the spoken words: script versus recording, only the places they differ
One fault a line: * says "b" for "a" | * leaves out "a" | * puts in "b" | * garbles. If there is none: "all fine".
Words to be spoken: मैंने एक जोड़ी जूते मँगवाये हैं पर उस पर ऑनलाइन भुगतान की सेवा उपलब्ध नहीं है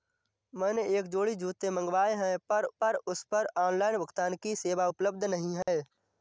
* puts in "पर"